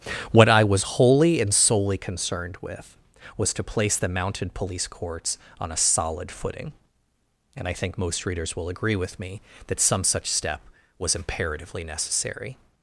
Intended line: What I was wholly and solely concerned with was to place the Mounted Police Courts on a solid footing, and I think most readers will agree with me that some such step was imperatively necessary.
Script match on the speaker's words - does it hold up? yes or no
yes